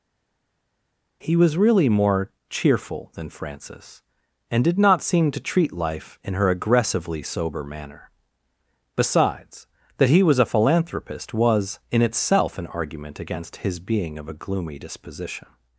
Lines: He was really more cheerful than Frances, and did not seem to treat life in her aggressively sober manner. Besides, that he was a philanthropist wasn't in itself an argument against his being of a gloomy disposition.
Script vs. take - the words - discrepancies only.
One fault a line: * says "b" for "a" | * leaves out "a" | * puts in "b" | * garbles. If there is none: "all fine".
* says "was" for "wasn't"